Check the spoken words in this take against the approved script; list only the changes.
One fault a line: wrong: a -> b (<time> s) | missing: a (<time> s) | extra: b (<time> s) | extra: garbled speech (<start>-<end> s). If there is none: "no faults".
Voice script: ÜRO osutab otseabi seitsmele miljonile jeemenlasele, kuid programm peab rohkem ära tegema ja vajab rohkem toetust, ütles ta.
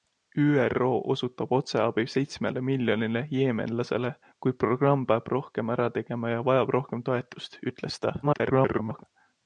extra: garbled speech (8.2-9.0 s)